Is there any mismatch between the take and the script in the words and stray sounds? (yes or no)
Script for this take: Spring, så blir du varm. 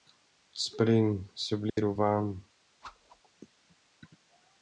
yes